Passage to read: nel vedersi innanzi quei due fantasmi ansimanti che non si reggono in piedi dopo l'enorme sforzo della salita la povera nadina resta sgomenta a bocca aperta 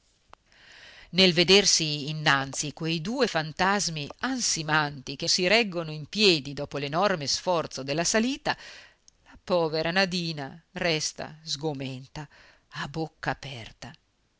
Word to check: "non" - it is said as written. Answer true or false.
false